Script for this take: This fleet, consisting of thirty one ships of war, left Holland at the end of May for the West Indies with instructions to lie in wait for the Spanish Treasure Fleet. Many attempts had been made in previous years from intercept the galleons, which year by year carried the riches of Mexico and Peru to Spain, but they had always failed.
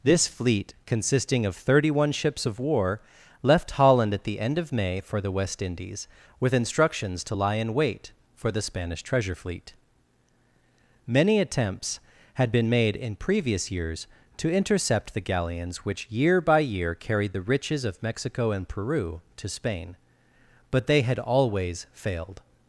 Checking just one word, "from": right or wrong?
wrong